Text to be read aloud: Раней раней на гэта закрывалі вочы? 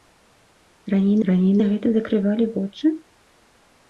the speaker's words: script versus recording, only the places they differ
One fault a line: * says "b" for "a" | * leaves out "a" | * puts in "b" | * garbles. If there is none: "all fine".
all fine